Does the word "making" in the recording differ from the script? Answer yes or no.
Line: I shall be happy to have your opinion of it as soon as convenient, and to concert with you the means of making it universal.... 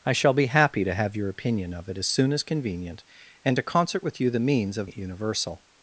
yes